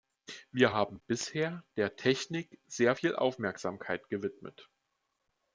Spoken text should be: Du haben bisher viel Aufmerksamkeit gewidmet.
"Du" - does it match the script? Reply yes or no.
no